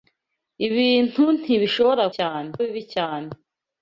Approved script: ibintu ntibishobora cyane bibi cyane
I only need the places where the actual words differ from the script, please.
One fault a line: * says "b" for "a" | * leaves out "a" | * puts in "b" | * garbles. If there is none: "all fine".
all fine